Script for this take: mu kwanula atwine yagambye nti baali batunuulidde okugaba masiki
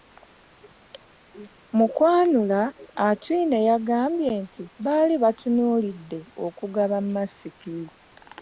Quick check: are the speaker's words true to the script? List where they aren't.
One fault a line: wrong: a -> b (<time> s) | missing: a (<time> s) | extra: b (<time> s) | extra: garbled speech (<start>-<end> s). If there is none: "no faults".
no faults